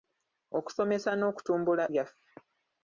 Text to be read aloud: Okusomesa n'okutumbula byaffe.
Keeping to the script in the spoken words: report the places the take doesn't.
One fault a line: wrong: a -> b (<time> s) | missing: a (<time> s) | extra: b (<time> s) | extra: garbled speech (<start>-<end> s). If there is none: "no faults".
no faults